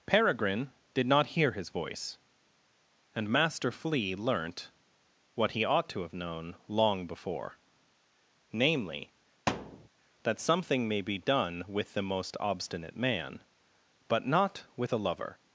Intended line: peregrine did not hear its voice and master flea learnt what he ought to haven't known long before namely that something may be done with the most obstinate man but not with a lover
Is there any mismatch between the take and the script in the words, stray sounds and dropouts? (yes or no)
yes